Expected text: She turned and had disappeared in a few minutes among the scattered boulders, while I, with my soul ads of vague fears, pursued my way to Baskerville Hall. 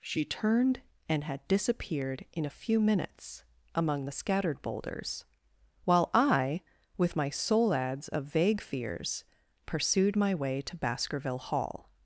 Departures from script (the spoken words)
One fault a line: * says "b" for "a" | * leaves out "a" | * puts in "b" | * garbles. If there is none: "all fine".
all fine